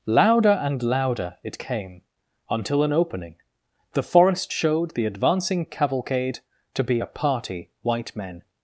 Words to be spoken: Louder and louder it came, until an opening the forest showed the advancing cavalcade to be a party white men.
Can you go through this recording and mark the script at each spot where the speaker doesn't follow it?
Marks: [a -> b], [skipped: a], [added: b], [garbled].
Louder and louder it came, until an opening the forest showed the advancing cavalcade to be a party white men.